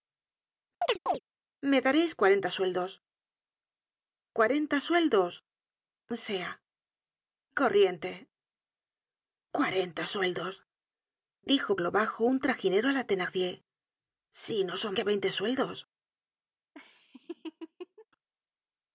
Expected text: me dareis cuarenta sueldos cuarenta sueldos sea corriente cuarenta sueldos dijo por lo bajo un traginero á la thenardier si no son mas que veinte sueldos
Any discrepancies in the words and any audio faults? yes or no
yes